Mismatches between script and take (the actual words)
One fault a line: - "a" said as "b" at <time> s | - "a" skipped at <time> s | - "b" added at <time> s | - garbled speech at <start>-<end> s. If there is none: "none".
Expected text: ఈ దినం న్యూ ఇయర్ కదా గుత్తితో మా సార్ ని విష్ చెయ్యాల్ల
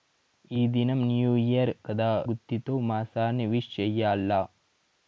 none